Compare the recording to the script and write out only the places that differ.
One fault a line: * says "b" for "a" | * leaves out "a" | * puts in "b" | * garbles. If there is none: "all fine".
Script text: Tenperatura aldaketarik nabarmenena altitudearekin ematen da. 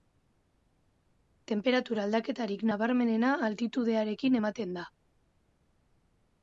all fine